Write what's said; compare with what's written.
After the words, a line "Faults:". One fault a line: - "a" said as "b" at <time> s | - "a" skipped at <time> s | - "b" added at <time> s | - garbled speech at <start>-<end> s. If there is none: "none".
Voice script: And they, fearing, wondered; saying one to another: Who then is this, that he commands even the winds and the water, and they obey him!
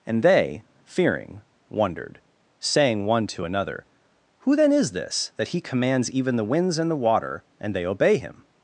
And they, fearing, wondered; saying one to another: Who then is this, that he commands even the winds and the water, and they obey him!
Faults:
none